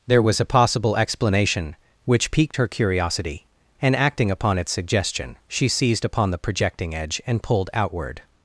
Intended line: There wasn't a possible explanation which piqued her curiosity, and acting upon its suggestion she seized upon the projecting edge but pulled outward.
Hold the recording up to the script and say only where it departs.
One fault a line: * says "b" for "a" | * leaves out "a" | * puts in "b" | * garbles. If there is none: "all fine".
* says "was" for "wasn't"
* says "and" for "but"